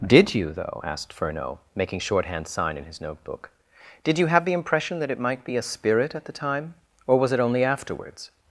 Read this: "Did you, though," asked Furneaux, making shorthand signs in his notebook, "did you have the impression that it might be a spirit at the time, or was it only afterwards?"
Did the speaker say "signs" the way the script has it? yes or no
no